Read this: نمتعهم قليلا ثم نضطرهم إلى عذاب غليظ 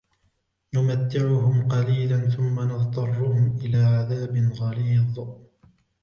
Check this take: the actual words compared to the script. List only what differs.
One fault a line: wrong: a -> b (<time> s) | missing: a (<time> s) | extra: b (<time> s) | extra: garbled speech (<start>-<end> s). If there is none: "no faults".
no faults